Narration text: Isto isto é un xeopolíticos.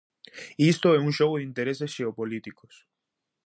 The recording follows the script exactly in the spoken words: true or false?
false